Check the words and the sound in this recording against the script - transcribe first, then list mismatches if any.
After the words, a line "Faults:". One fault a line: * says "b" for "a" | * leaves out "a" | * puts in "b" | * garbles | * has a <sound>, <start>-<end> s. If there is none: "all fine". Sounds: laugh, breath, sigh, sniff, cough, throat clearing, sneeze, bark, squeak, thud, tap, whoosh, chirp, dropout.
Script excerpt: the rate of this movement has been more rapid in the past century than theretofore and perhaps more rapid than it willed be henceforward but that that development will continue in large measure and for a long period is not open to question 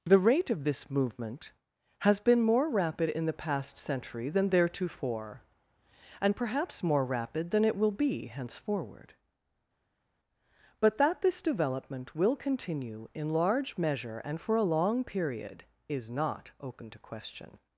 the rate of this movement has been more rapid in the past century than theretofore and perhaps more rapid than it will be henceforward but that this development will continue in large measure and for a long period is not open to question
Faults:
* says "will" for "willed"
* says "this" for "that"